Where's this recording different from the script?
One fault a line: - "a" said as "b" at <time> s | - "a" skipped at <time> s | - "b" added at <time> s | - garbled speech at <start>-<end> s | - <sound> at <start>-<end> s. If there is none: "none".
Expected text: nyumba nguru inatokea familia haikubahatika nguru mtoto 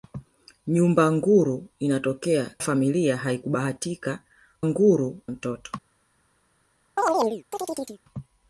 - chirp at 7.0-8.0 s